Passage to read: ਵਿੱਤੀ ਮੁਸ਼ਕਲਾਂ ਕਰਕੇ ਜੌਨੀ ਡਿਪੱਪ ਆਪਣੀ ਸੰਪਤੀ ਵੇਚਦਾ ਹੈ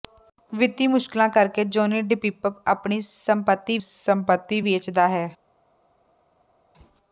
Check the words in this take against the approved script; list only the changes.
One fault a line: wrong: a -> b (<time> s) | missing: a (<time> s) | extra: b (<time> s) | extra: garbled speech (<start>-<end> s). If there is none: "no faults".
extra: ਸੰਪਤੀ (3.8 s)